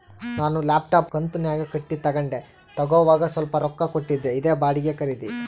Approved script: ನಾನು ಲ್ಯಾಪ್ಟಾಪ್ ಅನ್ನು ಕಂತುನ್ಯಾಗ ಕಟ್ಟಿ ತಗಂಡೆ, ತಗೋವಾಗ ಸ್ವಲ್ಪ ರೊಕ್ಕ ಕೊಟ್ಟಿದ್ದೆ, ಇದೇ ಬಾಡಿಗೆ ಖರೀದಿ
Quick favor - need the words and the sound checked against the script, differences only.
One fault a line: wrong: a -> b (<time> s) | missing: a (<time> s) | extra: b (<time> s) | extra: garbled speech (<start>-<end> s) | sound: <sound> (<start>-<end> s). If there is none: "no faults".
missing: ಅನ್ನು (1.1 s)